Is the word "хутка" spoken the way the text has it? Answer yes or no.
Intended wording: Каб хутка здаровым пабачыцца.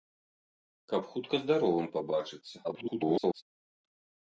yes